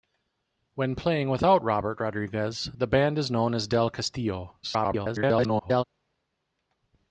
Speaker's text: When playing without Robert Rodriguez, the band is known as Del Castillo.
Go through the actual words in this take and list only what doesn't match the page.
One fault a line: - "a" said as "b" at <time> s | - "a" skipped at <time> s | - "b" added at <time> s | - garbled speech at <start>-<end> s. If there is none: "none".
- garbled speech at 4.6-5.8 s